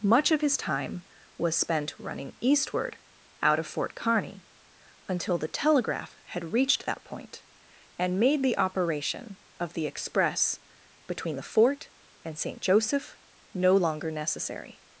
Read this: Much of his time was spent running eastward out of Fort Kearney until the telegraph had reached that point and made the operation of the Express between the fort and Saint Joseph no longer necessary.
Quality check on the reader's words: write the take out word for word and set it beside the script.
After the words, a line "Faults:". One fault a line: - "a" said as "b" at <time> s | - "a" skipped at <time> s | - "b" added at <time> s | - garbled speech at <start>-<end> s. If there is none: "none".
Much of his time was spent running eastward out of Fort Kearney until the telegraph had reached that point and made the operation of the Express between the fort and Saint Joseph no longer necessary.
Faults:
none